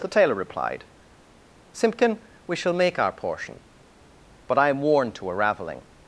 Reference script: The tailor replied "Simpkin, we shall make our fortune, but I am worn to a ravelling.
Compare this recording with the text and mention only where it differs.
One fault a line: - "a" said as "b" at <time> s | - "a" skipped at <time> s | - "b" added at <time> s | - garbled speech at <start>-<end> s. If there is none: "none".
- "fortune" said as "portion" at 3.1 s